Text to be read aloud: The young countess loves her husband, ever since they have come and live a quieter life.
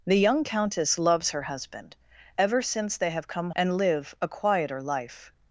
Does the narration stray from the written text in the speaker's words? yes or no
no